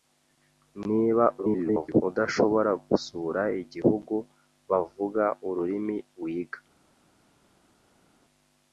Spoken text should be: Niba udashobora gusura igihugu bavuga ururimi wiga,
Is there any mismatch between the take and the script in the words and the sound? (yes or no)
yes